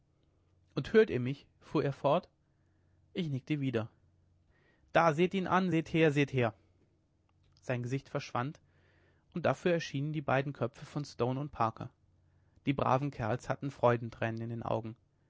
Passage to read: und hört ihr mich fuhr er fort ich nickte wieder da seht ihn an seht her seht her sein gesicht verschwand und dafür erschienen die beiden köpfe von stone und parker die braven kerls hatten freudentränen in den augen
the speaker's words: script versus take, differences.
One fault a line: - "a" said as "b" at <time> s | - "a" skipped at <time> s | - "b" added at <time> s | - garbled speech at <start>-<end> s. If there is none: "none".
none